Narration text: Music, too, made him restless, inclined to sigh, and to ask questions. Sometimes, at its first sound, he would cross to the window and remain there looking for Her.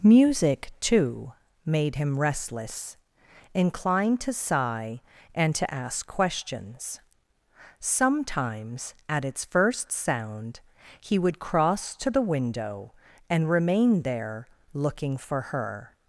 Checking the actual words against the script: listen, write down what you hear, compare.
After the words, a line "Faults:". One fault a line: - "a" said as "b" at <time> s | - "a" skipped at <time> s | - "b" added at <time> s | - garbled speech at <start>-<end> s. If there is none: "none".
Music, too, made him restless, inclined to sigh, and to ask questions. Sometimes, at its first sound, he would cross to the window and remain there looking for Her.
Faults:
none